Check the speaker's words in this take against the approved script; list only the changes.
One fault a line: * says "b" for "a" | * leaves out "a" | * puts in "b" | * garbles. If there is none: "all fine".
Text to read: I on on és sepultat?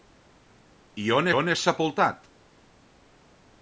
all fine